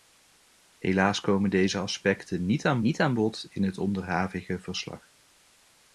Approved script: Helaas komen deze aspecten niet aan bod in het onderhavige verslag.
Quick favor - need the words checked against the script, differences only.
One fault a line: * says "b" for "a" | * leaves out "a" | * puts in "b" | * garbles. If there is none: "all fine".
* puts in "niet aan"